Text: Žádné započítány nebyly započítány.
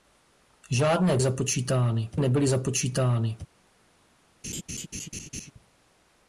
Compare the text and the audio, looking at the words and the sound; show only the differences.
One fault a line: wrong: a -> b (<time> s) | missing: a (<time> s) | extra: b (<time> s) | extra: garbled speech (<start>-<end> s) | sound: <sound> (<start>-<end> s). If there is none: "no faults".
sound: laugh (4.4-5.5 s)